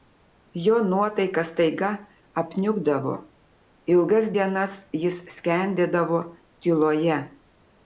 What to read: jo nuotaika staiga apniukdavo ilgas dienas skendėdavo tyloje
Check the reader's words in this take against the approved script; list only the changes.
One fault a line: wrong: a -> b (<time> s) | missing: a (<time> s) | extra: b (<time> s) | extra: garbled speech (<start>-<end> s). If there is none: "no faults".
extra: jis (5.0 s)